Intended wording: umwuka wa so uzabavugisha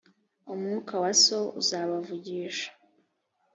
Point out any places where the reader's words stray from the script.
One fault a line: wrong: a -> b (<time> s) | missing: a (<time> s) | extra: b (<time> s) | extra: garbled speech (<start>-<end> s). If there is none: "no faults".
no faults